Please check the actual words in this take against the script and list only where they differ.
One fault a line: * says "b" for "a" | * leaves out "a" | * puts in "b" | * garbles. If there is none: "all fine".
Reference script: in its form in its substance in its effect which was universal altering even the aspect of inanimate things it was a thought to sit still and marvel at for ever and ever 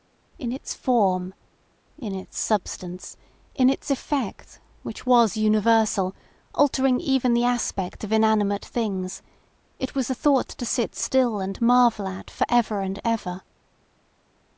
all fine